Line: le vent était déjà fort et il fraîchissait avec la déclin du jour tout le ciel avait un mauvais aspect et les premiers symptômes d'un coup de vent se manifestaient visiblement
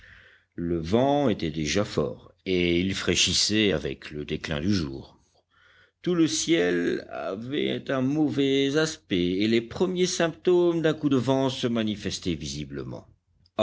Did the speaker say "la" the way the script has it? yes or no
no